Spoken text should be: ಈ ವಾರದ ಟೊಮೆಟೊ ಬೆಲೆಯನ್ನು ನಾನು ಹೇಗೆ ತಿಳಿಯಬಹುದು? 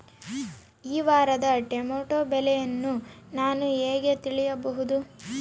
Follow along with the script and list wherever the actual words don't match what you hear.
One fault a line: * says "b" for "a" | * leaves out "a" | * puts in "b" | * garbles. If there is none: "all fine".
all fine